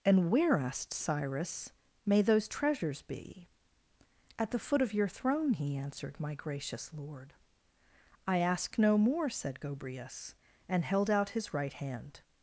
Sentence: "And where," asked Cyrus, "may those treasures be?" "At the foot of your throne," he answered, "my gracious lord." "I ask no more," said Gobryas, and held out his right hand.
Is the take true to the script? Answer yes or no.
yes